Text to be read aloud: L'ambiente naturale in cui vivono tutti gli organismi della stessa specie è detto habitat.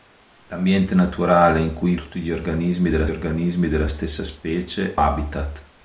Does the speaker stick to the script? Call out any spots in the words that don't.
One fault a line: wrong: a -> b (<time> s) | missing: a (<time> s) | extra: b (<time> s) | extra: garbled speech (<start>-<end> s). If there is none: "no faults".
missing: vivono (1.9 s)
extra: organismi della (3.1 s)
missing: è detto (5.0 s)